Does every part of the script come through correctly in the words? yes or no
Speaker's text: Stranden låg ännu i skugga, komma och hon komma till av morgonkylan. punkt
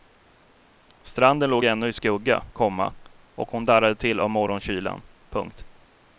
no